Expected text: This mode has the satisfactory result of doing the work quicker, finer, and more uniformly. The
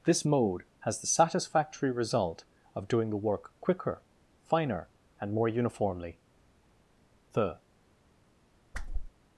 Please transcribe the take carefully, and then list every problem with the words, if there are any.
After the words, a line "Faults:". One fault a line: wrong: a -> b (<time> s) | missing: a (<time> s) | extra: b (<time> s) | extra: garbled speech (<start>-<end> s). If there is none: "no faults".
This mode has the satisfactory result of doing the work quicker, finer, and more uniformly. The
Faults:
no faults